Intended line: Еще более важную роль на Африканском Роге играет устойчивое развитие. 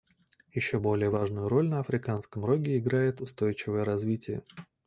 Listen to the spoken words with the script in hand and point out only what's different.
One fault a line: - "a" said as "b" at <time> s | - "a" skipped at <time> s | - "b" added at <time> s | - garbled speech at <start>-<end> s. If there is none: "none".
none